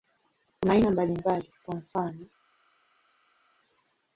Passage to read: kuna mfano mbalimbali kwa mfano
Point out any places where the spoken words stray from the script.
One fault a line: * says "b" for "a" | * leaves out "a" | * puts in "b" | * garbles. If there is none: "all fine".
* says "aina" for "mfano"